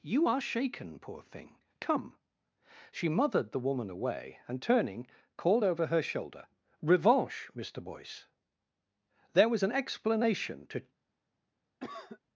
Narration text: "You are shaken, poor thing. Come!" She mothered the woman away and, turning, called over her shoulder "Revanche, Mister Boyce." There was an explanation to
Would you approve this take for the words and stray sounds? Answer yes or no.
no